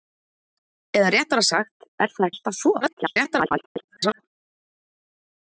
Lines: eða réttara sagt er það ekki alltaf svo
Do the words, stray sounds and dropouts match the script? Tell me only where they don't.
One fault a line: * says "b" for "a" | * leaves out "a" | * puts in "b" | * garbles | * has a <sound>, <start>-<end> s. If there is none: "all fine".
* leaves out "ekki"
* garbles